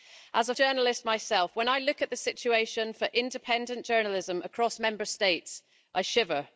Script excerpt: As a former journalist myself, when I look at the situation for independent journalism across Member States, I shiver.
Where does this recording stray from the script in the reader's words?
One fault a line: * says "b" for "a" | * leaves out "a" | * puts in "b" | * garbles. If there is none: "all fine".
* leaves out "former"